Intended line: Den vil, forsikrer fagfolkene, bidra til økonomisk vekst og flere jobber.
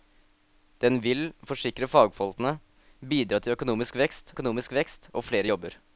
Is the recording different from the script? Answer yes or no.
yes